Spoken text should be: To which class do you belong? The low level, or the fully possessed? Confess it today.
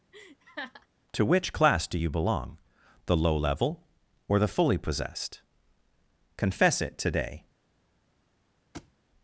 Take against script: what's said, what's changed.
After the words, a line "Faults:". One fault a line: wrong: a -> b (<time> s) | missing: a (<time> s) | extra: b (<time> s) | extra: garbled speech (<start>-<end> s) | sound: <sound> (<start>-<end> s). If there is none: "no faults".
To which class do you belong? The low level, or the fully possessed? Confess it today.
Faults:
sound: laugh (0.1-0.9 s)
sound: thud (8.7-8.9 s)